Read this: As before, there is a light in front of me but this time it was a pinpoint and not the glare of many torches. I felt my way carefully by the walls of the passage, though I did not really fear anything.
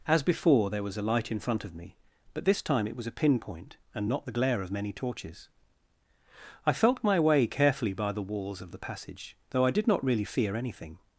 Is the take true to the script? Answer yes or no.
no